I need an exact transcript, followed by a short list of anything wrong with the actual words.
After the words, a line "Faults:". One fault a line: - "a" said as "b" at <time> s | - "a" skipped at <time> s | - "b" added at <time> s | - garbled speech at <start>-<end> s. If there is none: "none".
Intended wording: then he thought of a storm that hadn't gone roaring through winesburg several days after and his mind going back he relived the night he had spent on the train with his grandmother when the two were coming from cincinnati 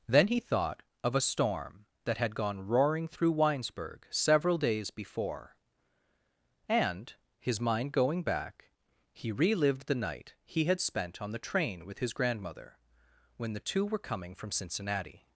then he thought of a storm that had gone roaring through winesburg several days before and his mind going back he relived the night he had spent on the train with his grandmother when the two were coming from cincinnati
Faults:
- "hadn't" said as "had" at 2.2 s
- "after" said as "before" at 4.9 s